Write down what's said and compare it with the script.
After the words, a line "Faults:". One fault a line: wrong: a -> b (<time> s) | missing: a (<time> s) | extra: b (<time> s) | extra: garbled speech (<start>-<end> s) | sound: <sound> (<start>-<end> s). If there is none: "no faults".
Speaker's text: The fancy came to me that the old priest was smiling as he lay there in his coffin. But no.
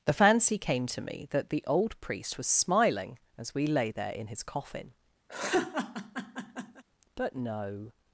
The fancy came to me that the old priest was smiling as we lay there in his coffin. But no.
Faults:
wrong: he -> we (3.5 s)
sound: laugh (5.3-6.8 s)